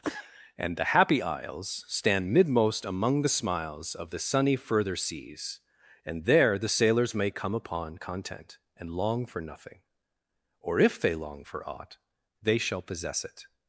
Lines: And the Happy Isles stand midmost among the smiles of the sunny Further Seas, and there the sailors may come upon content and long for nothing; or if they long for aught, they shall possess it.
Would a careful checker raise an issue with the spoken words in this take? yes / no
no